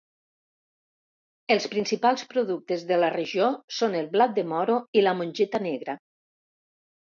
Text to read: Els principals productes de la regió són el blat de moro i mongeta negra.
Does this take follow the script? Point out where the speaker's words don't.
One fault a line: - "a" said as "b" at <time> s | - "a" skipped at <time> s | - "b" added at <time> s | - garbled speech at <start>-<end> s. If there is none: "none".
- "la" added at 5.1 s